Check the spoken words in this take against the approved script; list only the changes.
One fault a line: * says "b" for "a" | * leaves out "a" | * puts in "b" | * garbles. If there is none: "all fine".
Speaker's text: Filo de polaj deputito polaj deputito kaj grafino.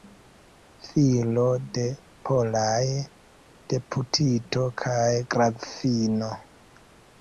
* leaves out "polaj deputito"